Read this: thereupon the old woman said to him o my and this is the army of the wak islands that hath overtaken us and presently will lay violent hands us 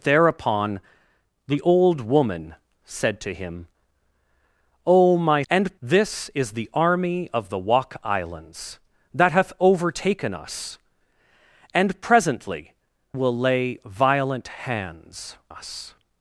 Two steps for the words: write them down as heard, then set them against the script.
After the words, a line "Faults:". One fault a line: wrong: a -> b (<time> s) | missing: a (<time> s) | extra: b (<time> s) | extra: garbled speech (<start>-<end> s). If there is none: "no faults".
thereupon the old woman said to him o my and this is the army of the wak islands that hath overtaken us and presently will lay violent hands us
Faults:
no faults